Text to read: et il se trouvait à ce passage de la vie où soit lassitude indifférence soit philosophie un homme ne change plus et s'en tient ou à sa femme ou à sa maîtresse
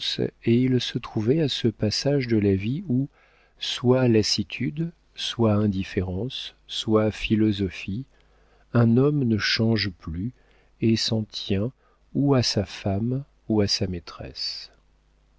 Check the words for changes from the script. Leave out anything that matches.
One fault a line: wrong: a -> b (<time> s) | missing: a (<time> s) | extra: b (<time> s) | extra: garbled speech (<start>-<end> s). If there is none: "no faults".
extra: soit (5.1 s)